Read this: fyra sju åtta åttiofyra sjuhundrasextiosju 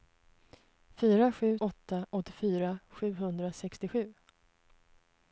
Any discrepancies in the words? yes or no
no